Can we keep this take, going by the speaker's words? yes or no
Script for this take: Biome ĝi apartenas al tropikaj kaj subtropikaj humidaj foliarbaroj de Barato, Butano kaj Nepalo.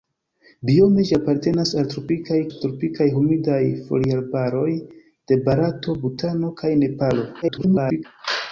no